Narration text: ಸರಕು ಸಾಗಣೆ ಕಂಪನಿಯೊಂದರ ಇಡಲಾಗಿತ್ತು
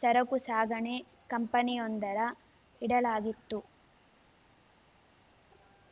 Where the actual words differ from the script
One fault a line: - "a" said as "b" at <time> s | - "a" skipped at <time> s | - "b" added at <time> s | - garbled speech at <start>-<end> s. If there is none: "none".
none